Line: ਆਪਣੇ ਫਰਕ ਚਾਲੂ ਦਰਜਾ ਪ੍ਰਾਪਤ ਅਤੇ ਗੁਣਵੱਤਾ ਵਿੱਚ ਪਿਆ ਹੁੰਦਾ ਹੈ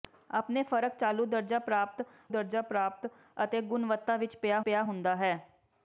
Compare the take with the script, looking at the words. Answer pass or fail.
fail